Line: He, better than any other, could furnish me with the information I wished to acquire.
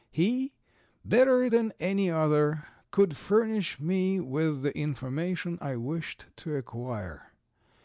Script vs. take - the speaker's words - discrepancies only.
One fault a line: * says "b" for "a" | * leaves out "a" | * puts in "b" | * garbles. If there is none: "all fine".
all fine